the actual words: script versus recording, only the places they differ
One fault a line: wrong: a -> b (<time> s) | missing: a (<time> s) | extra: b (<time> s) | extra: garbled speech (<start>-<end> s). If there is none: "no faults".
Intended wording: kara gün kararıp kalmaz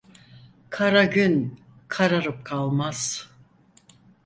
no faults